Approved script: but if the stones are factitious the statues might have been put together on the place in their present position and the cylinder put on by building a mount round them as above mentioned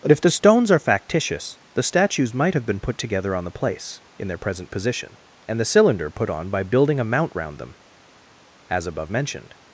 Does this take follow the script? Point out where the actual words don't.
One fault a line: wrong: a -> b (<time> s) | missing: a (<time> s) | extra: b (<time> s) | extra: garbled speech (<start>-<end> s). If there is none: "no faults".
no faults